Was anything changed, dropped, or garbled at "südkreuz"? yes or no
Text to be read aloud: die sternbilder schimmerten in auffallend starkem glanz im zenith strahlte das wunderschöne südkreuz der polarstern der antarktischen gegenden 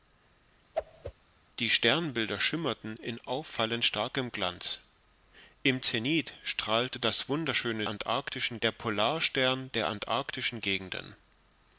yes